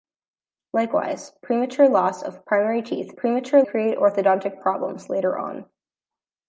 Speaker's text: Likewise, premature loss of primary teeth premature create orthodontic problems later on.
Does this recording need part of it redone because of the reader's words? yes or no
no